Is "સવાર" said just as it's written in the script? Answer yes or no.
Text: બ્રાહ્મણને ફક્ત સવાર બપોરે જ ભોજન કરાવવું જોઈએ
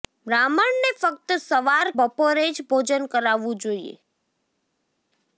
yes